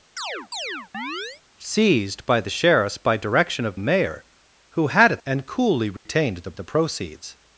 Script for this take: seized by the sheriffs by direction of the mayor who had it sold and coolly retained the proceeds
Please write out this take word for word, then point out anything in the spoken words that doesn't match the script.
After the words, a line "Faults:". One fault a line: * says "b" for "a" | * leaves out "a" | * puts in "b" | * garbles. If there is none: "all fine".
seized by the sheriffs by direction of mayor who had it and coolly retained the the proceeds
Faults:
* leaves out "the"
* leaves out "sold"
* puts in "the"